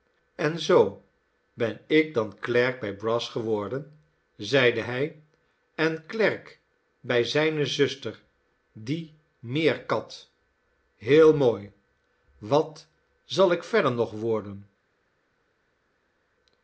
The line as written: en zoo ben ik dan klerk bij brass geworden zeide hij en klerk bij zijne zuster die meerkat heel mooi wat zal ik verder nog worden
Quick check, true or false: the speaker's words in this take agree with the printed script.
true